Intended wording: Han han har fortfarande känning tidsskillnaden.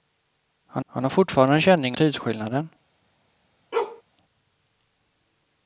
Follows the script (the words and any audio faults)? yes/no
no